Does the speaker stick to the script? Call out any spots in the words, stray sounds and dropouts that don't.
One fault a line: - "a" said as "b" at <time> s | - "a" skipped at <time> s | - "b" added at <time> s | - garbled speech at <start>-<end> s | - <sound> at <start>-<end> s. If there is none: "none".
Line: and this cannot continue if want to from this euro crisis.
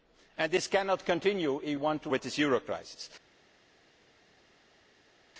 none